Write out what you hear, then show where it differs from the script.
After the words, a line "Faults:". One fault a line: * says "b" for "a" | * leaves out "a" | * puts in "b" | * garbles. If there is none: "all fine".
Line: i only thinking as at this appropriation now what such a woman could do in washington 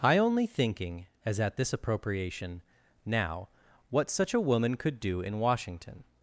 i only thinking as at this appropriation now what such a woman could do in washington
Faults:
all fine